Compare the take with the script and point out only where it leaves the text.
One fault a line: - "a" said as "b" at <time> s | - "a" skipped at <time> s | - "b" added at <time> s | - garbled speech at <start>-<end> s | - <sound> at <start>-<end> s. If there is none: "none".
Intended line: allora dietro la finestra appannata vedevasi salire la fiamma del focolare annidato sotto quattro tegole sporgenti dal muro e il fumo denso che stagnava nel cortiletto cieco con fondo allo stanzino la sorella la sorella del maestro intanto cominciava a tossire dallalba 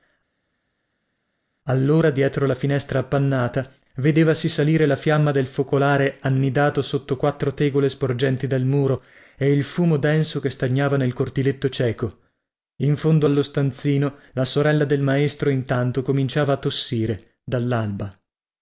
- "con" said as "in" at 12.8 s
- "la sorella" skipped at 14.8 s